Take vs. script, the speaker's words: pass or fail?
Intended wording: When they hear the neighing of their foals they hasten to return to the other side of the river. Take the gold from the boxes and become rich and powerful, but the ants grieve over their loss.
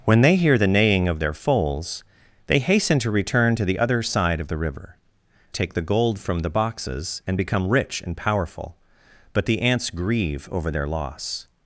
pass